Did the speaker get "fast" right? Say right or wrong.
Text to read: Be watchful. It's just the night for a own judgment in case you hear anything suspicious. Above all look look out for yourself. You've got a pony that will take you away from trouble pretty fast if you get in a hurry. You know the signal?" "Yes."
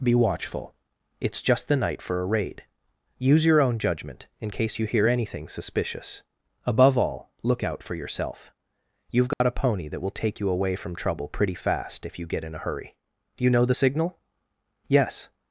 right